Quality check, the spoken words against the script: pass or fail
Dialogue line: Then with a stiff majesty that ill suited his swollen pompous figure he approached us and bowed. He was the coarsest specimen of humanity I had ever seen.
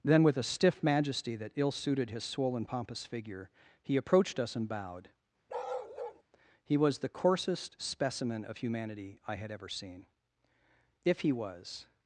fail